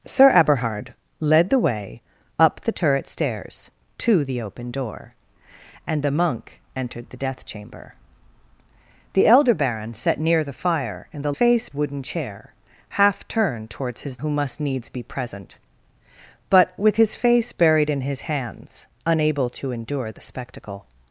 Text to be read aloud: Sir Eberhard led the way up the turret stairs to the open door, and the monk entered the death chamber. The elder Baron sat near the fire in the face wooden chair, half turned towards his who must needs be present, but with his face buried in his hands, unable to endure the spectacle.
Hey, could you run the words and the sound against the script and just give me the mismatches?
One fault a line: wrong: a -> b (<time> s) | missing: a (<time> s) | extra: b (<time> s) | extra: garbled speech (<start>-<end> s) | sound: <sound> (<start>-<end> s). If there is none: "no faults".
no faults